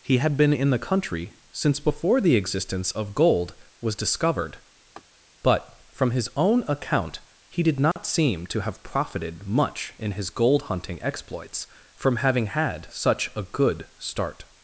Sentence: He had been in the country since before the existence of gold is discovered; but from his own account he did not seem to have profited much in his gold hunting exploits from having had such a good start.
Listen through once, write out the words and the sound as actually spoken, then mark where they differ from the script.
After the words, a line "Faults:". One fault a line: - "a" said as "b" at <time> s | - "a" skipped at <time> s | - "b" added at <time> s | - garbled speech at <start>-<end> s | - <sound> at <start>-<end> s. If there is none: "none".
He had been in the country since before the existence of gold was discovered; but from his own account he did not seem to have profited much in his gold hunting exploits from having had such a good start.
Faults:
- "is" said as "was" at 3.8 s
- laugh at 4.9-5.0 s
- dropout at 7.9-8.0 s